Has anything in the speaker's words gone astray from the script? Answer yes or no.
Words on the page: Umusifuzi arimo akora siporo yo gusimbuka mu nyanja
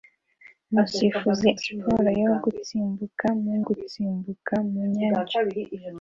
yes